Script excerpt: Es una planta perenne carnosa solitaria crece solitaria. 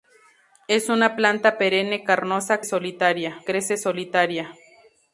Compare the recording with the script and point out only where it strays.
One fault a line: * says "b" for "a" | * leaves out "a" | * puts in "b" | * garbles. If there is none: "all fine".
all fine